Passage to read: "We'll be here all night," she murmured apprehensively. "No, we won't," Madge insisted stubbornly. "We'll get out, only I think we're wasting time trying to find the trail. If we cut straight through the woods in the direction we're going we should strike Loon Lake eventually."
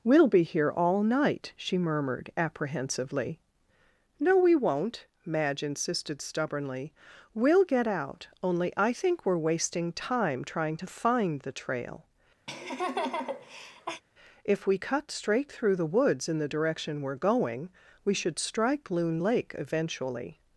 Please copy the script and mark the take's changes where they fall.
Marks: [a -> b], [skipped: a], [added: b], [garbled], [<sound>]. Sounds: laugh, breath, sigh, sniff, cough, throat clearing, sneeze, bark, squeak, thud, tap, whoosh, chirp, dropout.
"We'll be here all night," she murmured apprehensively. "No, we won't," Madge insisted stubbornly. "We'll get out, only I think we're wasting time trying to find the trail. [laugh] If we cut straight through the woods in the direction we're going we should strike Loon Lake eventually."